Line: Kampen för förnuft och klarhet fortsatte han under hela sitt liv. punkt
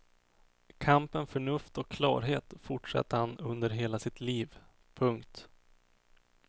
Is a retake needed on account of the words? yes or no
yes